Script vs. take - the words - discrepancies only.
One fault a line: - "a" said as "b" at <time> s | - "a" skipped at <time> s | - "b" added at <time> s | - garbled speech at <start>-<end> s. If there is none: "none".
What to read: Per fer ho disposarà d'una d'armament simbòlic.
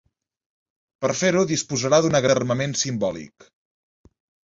none